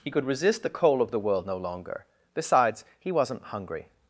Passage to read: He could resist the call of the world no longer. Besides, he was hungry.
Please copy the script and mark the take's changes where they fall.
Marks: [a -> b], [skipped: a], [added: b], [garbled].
He could resist the [call -> coal] of the world no longer. Besides, he [was -> wasn't] hungry.